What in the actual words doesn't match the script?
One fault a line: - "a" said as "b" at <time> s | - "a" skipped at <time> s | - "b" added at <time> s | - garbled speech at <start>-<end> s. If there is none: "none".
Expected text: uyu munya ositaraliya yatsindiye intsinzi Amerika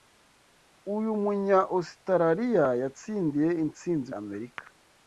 none